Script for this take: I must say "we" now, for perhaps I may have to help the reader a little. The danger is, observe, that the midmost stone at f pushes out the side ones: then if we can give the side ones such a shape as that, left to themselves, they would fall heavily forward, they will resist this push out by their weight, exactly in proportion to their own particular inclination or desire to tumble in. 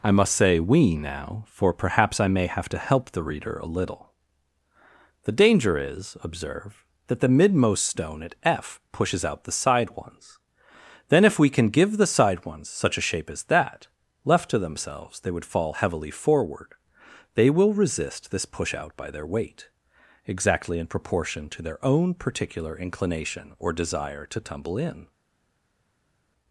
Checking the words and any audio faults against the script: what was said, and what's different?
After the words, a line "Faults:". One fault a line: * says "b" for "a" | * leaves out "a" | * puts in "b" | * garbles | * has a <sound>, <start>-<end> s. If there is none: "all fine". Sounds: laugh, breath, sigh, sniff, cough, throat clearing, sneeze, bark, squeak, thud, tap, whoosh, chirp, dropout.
I must say "we" now, for perhaps I may have to help the reader a little. The danger is, observe, that the midmost stone at f pushes out the side ones: then if we can give the side ones such a shape as that, left to themselves, they would fall heavily forward, they will resist this push out by their weight, exactly in proportion to their own particular inclination or desire to tumble in.
Faults:
all fine